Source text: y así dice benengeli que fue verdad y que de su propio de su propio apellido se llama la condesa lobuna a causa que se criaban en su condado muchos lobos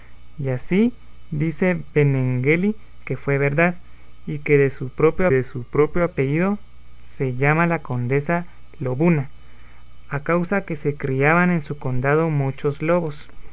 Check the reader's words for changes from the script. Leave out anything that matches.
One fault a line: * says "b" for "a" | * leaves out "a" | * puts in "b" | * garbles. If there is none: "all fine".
all fine